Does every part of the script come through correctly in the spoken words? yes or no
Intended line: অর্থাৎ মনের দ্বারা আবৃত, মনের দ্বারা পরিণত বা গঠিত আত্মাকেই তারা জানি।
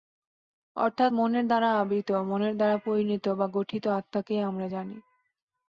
no